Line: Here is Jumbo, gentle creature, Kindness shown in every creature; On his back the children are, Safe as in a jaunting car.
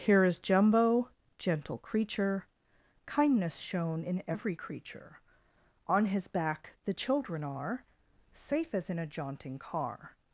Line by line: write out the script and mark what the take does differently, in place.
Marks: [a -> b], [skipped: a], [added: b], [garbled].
Here is Jumbo, gentle creature, Kindness shown in every creature; On his back the children are, Safe as in a jaunting car.